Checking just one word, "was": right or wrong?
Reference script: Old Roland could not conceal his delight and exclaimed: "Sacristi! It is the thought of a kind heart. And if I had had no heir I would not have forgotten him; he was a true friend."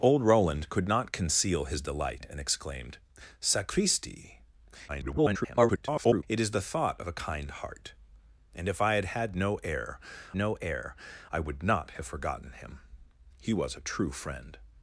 right